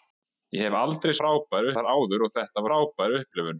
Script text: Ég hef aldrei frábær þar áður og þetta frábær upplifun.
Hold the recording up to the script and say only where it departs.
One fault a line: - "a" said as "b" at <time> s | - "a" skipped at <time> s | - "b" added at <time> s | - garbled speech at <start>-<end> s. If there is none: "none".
none